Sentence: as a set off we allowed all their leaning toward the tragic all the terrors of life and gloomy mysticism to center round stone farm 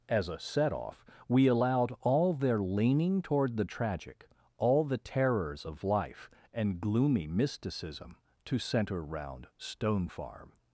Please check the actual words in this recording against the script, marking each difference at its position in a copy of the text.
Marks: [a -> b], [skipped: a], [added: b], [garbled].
as a set off we allowed all their leaning toward the tragic all the terrors of life and gloomy mysticism to center round stone farm